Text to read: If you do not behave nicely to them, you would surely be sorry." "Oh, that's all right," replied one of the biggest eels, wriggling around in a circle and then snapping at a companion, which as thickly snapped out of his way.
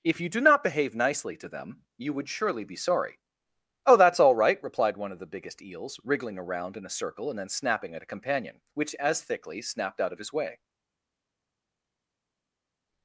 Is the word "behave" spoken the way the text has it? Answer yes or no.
yes